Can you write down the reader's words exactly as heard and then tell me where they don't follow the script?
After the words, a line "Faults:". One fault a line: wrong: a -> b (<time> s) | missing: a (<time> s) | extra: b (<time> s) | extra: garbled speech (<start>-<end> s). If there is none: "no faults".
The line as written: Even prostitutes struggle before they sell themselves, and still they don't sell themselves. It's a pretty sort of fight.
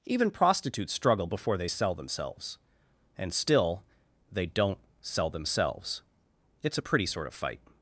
Even prostitutes struggle before they sell themselves, and still they don't sell themselves. It's a pretty sort of fight.
Faults:
no faults